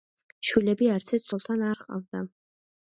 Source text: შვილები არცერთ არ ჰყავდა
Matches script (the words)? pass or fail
fail